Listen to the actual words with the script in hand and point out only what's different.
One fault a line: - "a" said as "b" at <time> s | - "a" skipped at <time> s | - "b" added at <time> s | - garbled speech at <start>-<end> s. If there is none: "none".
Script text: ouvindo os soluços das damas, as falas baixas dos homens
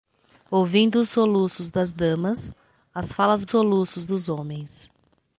- "baixas" said as "soluços" at 3.5 s